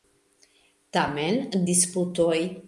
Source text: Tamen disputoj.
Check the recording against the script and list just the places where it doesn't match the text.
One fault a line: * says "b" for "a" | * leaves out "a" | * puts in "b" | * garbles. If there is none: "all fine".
all fine